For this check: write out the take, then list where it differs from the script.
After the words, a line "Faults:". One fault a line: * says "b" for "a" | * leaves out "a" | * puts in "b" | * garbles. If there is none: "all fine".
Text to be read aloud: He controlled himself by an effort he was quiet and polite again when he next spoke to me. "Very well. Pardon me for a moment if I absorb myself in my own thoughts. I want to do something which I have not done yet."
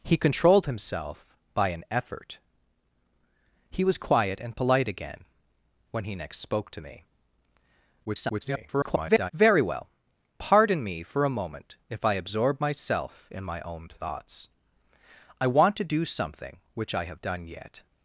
He controlled himself by an effort he was quiet and polite again when he next spoke to me. [garbled] "Very well. Pardon me for a moment if I absorb myself in my own thoughts. I want to do something which I have done yet."
Faults:
* garbles
* leaves out "not"